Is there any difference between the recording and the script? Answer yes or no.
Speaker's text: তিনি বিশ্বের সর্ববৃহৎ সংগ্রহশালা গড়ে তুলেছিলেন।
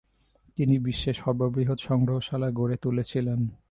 no